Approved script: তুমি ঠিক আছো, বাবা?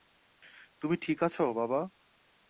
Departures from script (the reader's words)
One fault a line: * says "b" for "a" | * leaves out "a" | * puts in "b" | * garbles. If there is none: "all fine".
all fine